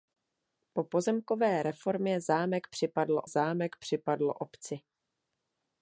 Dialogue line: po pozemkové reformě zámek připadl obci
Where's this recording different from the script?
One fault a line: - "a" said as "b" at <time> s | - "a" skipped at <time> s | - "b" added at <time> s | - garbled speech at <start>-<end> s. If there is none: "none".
- "zámek připadl" added at 3.3 s